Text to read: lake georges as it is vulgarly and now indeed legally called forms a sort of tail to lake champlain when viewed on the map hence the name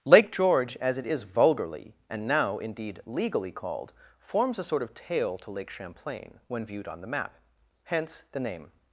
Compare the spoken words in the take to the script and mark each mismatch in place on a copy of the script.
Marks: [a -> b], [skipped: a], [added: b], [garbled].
lake [georges -> george] as it is vulgarly and now indeed legally called forms a sort of tail to lake champlain when viewed on the map hence the name